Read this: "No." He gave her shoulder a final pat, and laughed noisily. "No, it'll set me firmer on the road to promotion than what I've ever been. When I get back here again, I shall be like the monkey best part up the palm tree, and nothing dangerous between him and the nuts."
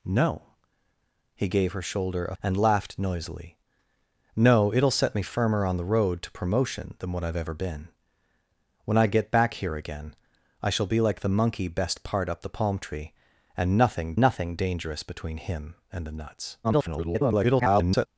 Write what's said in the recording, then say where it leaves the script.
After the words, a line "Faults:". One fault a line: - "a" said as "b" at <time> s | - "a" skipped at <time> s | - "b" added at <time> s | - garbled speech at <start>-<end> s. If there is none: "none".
"No." He gave her shoulder a and laughed noisily. "No, it'll set me firmer on the road to promotion than what I've ever been. When I get back here again, I shall be like the monkey best part up the palm tree, and nothing nothing dangerous between him and the nuts." [garbled]
Faults:
- "final pat" skipped at 2.4 s
- "nothing" added at 14.2 s
- garbled speech at 16.6-18.1 s